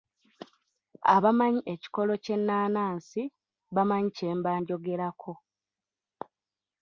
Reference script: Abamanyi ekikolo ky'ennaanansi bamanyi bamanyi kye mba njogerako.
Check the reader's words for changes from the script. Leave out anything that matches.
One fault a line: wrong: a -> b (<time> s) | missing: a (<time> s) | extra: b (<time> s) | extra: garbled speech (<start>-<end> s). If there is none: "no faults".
missing: bamanyi (4.1 s)